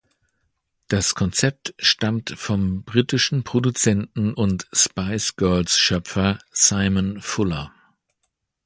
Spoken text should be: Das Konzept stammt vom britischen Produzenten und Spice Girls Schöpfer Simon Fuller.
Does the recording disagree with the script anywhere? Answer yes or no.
no